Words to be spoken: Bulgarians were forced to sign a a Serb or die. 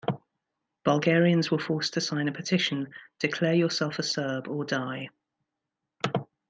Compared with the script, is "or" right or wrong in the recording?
right